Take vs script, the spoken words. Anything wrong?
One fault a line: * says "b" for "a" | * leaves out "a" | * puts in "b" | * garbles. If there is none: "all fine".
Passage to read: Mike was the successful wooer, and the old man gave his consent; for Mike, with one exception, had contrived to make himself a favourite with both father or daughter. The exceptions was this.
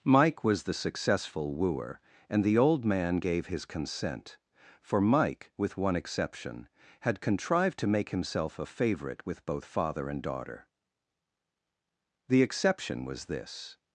* says "and" for "or"
* says "exception" for "exceptions"